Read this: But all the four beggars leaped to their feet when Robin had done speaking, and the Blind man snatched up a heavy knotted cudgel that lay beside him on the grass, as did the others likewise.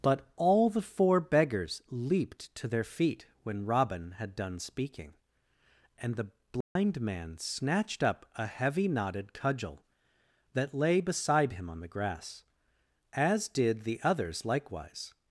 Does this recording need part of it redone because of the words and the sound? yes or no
yes